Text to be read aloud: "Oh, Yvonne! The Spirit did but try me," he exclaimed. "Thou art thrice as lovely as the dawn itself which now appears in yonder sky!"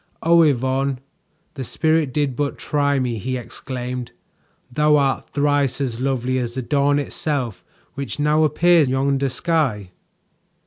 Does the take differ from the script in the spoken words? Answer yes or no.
yes